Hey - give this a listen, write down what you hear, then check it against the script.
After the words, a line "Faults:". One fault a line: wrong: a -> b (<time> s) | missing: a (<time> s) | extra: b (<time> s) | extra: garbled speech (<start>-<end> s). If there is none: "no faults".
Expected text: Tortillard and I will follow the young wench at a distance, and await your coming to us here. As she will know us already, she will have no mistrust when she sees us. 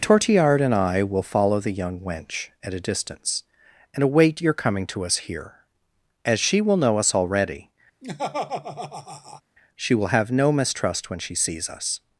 Tortillard and I will follow the young wench at a distance, and await your coming to us here. As she will know us already, she will have no mistrust when she sees us.
Faults:
no faults